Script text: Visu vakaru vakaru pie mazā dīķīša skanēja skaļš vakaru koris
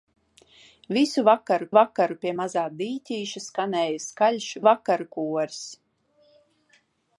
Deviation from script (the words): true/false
false